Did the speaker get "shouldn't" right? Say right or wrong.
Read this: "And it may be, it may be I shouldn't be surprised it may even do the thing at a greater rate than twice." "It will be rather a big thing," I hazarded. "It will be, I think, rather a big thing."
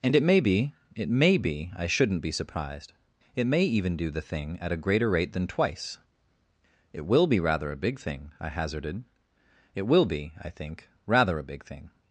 right